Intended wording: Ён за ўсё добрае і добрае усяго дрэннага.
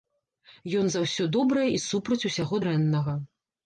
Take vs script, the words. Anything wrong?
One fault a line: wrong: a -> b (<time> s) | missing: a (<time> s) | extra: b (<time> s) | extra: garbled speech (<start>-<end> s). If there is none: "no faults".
wrong: добрае -> супраць (1.9 s)